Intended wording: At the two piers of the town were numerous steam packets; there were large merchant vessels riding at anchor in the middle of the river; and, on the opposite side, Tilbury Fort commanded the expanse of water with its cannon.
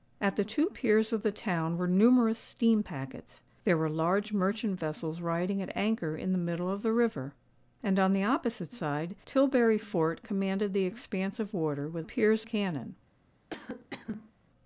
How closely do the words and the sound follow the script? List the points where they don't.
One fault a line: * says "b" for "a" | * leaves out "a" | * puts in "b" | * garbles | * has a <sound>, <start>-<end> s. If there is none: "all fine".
* says "piers" for "its"
* has a cough, 13.5-14.3 s